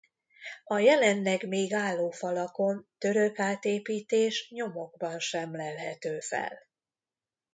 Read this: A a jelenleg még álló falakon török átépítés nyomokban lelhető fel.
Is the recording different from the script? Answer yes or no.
yes